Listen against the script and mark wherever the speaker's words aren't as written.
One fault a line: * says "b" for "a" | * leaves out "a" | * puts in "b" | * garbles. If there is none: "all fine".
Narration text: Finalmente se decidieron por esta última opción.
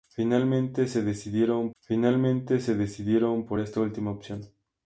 * puts in "finalmente se decidieron"